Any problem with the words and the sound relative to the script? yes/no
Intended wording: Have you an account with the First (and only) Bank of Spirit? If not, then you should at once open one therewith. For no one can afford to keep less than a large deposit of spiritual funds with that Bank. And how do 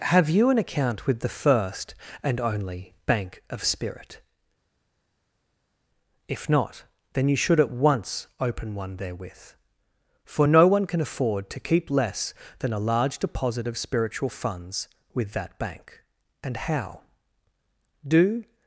no